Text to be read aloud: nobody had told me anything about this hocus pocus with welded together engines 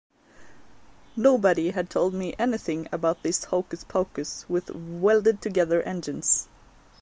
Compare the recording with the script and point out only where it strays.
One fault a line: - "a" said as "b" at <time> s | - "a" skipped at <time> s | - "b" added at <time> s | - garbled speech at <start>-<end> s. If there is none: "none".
none